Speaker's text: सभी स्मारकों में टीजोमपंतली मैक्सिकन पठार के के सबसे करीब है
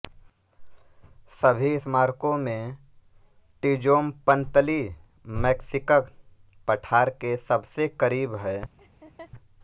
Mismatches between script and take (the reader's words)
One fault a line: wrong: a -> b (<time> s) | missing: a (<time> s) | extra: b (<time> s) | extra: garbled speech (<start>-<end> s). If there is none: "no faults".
missing: के (7.3 s)